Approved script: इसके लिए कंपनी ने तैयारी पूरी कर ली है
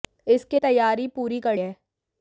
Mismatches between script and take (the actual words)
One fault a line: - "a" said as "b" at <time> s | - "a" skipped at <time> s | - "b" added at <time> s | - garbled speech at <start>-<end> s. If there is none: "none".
- "लिए कंपनी ने" skipped at 0.6 s
- "ली" skipped at 1.6 s